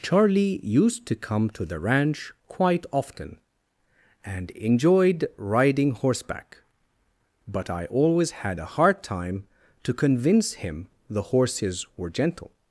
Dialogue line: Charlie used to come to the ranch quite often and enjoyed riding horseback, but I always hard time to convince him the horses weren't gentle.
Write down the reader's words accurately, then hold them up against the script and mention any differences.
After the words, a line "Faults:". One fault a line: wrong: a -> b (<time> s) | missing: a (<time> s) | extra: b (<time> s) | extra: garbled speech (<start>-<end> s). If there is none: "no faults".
Charlie used to come to the ranch quite often and enjoyed riding horseback, but I always had a hard time to convince him the horses were gentle.
Faults:
extra: had a (8.3 s)
wrong: weren't -> were (12.0 s)